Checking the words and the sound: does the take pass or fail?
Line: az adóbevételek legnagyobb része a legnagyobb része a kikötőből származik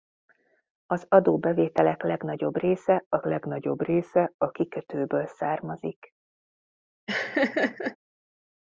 fail